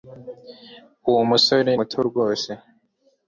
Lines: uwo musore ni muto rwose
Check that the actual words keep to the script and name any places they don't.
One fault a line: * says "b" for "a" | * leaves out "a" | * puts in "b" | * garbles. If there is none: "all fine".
* leaves out "ni"